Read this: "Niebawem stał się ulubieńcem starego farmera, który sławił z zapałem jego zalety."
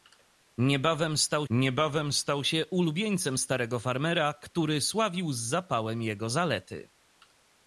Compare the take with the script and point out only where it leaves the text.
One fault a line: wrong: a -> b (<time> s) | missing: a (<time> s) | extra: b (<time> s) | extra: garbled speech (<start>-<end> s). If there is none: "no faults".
extra: niebawem stał (1.5 s)